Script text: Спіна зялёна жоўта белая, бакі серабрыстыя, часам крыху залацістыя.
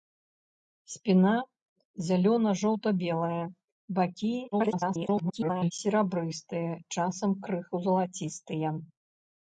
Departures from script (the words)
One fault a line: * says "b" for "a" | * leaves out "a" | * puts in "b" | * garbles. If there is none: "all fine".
* garbles